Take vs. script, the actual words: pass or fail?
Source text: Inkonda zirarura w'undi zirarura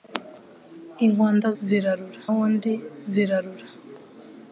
pass